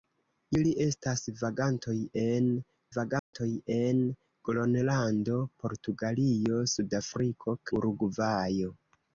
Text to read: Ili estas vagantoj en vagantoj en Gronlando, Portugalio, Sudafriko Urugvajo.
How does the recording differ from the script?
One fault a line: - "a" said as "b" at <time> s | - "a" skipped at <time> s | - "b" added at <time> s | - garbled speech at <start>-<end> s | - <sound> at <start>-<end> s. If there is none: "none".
- dropout at 3.2-3.3 s